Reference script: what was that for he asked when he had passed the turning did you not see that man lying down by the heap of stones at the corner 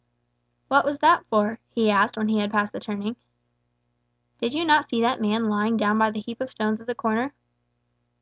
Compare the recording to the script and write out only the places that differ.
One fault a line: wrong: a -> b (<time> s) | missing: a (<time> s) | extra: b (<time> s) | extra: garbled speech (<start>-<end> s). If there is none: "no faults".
no faults